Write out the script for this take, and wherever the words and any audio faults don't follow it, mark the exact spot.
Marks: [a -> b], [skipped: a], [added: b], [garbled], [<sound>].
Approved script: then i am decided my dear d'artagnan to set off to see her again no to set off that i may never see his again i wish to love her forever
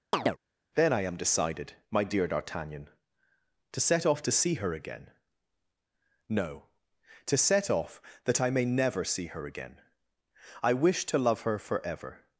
[chirp] then i am decided my dear d'artagnan to set off to see her again no to set off that i may never see [his -> her] again i wish to love her forever